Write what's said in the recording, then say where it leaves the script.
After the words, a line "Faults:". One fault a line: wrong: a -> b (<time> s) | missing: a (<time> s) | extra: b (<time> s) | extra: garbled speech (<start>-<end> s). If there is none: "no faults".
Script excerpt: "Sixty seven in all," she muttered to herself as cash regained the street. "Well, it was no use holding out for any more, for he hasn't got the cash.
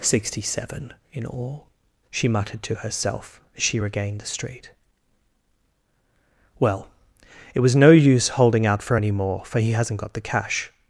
"Sixty seven in all," she muttered to herself as she regained the street. "Well, it was no use holding out for any more, for he hasn't got the cash.
Faults:
wrong: cash -> she (3.6 s)